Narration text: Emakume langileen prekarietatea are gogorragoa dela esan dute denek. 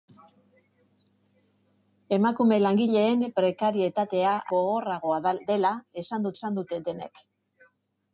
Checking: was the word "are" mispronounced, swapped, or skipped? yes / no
yes